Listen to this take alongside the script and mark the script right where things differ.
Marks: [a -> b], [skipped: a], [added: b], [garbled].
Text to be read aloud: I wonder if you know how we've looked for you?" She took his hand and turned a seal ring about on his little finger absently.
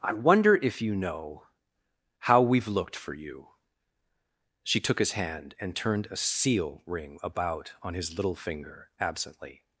I wonder if you know how we've looked for you?" She took his hand and turned a seal ring about on his little finger absently.